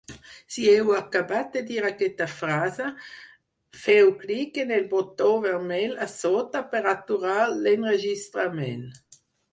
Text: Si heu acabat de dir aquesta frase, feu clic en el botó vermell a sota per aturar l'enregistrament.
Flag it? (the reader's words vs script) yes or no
no